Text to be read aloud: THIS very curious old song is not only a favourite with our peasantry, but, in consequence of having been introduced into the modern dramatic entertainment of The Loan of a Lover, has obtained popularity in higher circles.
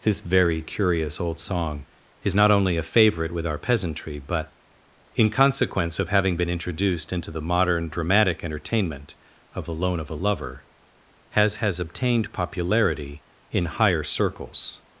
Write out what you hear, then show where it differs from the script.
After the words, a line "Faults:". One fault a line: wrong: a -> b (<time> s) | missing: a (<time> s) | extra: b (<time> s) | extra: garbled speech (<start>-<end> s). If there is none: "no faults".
THIS very curious old song is not only a favourite with our peasantry, but, in consequence of having been introduced into the modern dramatic entertainment of The Loan of a Lover, has has obtained popularity in higher circles.
Faults:
extra: has (11.6 s)